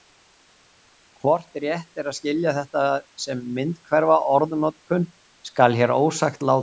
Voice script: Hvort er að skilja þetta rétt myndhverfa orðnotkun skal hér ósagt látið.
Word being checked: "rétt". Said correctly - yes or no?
no